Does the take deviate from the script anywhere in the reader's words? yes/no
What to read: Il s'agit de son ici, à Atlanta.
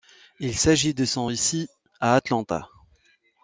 no